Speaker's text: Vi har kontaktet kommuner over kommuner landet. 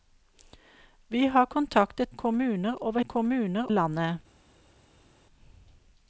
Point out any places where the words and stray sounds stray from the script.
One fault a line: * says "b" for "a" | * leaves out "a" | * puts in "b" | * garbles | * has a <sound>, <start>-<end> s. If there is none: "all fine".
all fine